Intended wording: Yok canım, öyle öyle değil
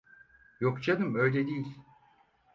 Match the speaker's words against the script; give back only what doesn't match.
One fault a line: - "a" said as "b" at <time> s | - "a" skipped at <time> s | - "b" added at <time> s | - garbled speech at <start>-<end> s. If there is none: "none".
- "öyle" skipped at 1.5 s